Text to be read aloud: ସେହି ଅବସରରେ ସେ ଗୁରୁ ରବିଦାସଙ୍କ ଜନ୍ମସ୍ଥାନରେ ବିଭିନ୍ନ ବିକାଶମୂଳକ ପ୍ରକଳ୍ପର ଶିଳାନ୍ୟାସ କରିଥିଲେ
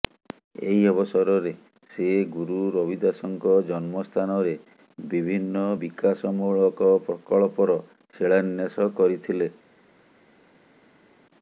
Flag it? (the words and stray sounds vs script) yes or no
yes